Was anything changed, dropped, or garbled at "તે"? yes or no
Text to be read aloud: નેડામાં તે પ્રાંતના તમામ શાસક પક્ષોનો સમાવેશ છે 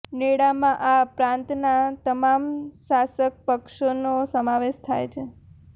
yes